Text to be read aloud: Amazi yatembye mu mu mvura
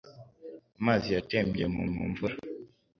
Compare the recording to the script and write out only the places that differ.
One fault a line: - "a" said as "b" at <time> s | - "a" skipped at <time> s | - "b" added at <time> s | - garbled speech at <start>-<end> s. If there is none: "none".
none